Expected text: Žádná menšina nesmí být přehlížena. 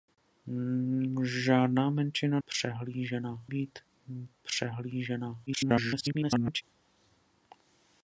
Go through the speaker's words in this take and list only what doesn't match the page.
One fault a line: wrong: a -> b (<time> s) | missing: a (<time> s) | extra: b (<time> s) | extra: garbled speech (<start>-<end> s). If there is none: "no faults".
wrong: nesmí -> přehlížena (2.5 s)
extra: garbled speech (5.5-6.6 s)